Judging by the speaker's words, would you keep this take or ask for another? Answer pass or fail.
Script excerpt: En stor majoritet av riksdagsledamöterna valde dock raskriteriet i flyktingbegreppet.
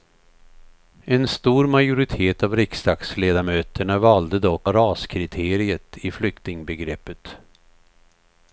pass